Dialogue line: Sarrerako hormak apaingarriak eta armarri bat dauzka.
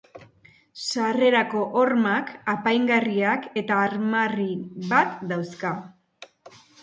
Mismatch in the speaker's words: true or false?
false